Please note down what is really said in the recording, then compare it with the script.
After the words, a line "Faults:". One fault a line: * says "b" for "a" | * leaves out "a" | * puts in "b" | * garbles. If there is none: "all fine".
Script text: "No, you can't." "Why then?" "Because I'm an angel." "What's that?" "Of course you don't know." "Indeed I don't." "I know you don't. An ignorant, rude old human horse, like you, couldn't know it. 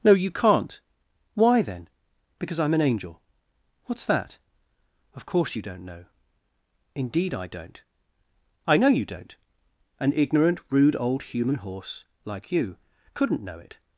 "No, you can't." "Why then?" "Because I'm an angel." "What's that?" "Of course you don't know." "Indeed I don't." "I know you don't. An ignorant, rude old human horse, like you, couldn't know it.
Faults:
all fine